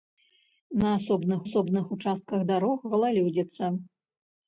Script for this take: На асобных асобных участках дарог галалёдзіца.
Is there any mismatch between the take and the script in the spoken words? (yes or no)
no